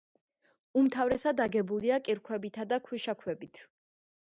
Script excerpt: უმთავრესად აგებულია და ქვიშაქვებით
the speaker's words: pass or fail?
fail